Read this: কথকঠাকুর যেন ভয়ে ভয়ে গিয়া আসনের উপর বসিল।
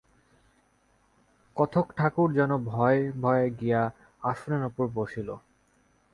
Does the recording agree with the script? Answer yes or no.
yes